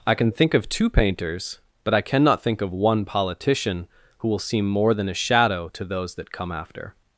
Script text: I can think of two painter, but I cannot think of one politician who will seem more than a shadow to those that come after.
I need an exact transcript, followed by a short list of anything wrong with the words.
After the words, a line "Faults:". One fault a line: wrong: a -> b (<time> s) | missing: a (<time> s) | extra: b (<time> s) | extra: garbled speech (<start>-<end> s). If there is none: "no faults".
I can think of two painters, but I cannot think of one politician who will seem more than a shadow to those that come after.
Faults:
wrong: painter -> painters (0.9 s)